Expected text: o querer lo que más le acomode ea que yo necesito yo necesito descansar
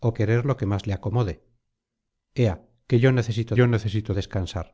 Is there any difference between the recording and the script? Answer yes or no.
no